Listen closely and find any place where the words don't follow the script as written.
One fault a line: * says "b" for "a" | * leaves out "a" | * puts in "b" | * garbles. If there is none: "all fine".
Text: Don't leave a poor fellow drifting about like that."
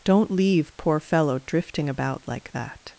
* leaves out "a"